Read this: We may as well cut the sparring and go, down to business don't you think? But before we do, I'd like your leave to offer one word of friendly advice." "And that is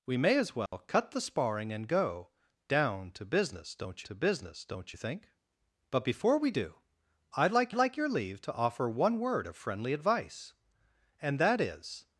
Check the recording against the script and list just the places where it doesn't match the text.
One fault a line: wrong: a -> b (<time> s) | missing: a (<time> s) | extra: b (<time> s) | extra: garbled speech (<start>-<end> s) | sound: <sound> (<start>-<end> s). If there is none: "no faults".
sound: dropout (0.7-0.7 s)
extra: to business don't (4.0 s)
extra: like (7.7 s)